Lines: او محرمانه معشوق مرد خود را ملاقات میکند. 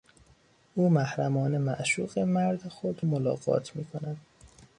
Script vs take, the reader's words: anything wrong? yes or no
yes